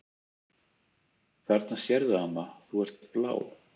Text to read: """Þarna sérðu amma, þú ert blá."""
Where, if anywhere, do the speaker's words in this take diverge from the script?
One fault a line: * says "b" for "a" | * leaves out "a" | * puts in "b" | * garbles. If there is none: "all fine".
* puts in "ert"